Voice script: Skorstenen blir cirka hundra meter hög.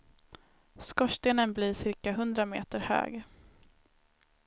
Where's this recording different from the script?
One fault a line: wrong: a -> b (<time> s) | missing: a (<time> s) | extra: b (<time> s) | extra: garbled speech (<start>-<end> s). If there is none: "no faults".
no faults